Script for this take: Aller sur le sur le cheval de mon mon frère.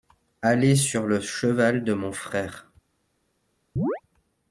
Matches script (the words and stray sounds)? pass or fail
fail